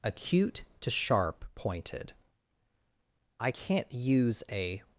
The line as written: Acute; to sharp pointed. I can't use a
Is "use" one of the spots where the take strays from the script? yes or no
no